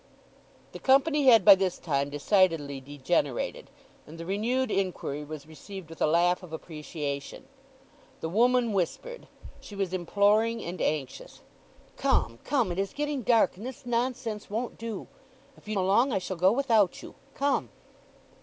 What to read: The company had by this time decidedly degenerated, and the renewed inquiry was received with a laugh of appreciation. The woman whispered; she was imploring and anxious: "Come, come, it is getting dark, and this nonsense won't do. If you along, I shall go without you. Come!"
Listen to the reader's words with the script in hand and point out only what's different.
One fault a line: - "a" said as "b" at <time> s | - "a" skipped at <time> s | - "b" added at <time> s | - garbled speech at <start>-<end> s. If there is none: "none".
none